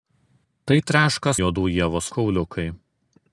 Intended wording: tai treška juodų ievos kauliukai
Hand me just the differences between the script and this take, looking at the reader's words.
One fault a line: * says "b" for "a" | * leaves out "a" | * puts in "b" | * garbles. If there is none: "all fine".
all fine